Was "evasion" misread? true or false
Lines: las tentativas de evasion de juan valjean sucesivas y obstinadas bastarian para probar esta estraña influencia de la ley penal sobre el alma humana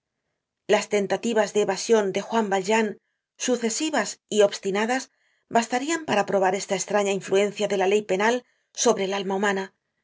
false